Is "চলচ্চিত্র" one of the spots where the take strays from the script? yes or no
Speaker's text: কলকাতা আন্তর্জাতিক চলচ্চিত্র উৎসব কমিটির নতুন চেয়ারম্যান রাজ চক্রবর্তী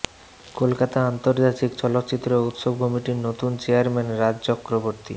no